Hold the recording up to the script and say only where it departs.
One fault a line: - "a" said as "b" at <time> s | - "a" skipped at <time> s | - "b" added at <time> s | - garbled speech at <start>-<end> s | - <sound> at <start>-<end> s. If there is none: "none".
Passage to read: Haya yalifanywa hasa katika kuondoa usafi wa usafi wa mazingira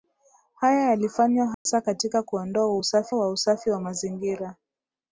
- dropout at 1.5-1.7 s